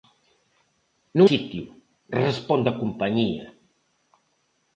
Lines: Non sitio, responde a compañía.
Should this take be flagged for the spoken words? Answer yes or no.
no